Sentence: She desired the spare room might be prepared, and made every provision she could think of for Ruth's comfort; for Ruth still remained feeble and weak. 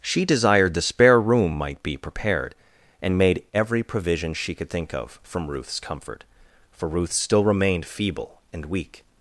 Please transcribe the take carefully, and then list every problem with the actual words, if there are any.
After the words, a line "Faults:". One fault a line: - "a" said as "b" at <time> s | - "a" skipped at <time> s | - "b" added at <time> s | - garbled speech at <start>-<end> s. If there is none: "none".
She desired the spare room might be prepared, and made every provision she could think of from Ruth's comfort; for Ruth still remained feeble and weak.
Faults:
- "for" said as "from" at 5.2 s